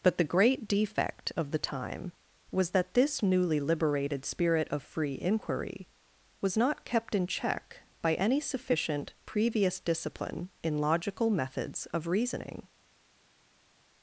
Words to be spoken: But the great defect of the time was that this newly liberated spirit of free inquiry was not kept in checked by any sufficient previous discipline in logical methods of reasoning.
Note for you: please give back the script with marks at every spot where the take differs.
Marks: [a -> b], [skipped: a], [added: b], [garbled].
But the great defect of the time was that this newly liberated spirit of free inquiry was not kept in [checked -> check] by any sufficient previous discipline in logical methods of reasoning.